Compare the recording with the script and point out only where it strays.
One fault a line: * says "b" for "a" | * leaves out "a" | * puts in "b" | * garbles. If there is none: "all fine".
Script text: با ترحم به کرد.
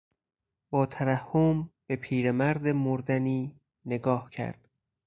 * puts in "پیرمرد مردنی نگاه"